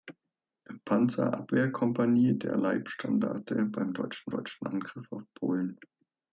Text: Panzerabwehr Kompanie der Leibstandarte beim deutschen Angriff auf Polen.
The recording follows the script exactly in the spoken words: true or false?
false